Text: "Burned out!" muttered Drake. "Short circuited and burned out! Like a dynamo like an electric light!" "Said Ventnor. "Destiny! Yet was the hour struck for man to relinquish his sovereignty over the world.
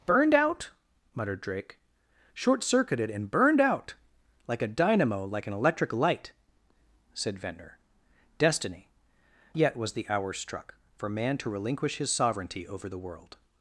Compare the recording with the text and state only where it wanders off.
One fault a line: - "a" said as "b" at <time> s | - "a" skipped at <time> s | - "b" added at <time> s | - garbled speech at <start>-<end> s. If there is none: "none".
none